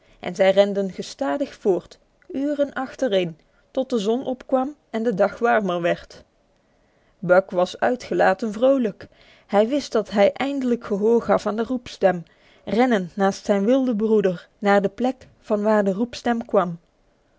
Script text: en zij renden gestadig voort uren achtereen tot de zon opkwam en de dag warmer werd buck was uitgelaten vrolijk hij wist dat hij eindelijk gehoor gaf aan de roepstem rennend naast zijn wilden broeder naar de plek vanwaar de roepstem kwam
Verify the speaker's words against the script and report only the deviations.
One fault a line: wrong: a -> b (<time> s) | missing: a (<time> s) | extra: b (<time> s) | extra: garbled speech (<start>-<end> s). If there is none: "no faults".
no faults